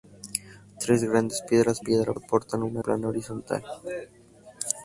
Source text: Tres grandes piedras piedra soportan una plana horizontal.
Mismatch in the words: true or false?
false